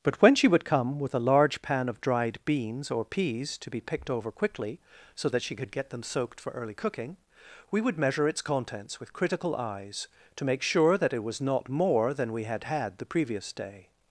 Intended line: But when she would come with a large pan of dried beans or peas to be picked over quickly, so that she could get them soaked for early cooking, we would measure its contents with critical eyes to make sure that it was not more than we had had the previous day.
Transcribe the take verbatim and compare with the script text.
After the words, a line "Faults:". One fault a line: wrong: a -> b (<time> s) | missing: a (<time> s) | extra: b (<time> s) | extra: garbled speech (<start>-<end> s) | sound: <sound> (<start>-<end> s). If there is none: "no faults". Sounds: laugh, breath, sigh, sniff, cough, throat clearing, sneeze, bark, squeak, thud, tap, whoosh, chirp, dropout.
But when she would come with a large pan of dried beans or peas to be picked over quickly, so that she could get them soaked for early cooking, we would measure its contents with critical eyes to make sure that it was not more than we had had the previous day.
Faults:
no faults